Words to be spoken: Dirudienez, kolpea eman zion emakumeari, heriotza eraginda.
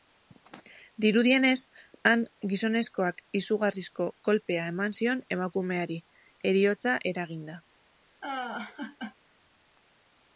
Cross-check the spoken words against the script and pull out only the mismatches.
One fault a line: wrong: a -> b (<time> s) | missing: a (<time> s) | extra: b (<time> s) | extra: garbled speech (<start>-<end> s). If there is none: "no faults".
extra: han gizonezkoak izugarrizko (2.1 s)